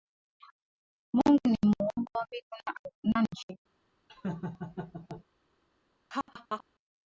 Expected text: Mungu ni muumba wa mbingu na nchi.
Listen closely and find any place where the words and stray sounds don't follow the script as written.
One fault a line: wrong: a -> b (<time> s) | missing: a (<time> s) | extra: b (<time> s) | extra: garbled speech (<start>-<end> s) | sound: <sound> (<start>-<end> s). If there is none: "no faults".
sound: laugh (4.1-5.2 s)
sound: laugh (6.1-6.6 s)